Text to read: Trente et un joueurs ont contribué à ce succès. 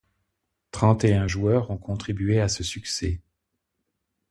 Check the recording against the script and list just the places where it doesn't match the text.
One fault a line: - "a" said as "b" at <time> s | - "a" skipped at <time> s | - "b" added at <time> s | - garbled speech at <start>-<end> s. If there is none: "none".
none